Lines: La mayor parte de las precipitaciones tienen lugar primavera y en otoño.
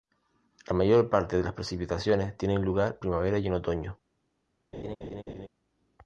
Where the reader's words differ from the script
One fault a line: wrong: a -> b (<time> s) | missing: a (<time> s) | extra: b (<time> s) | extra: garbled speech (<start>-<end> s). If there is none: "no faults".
no faults